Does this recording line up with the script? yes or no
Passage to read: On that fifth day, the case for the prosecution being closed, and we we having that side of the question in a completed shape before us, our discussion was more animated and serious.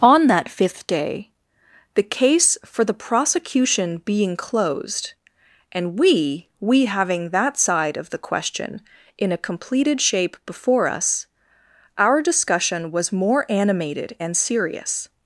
yes